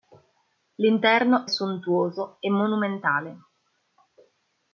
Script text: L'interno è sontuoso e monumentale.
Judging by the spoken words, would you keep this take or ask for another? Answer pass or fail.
fail